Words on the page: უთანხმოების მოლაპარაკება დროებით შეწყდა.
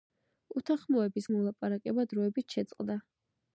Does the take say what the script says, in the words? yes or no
yes